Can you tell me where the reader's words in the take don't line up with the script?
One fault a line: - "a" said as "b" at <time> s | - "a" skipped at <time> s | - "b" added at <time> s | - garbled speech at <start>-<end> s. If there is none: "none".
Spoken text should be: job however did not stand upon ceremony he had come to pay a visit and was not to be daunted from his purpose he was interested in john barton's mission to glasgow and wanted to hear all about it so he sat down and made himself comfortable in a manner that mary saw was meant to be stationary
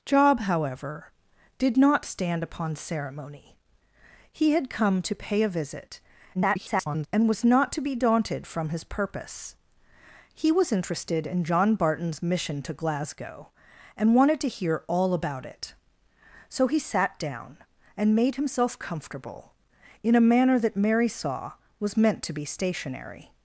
- garbled speech at 6.3-7.1 s